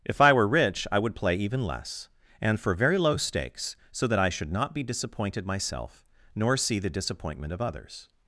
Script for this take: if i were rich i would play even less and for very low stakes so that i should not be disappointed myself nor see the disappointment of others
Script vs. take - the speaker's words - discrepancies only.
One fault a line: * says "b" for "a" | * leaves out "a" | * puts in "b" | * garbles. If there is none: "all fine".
all fine